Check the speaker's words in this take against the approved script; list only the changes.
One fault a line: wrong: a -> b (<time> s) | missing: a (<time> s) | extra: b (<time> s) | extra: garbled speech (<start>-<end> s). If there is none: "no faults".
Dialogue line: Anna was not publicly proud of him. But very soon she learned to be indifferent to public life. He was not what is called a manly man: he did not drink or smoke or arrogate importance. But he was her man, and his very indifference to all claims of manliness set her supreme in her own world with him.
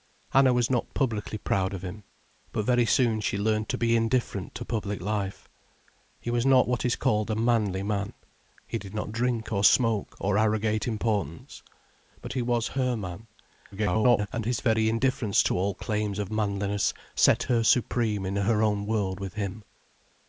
extra: garbled speech (13.7-14.3 s)